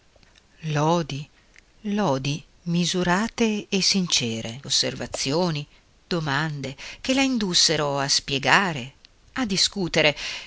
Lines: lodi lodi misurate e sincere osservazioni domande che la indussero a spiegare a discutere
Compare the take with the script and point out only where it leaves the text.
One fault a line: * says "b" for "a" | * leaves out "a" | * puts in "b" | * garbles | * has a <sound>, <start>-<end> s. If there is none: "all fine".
all fine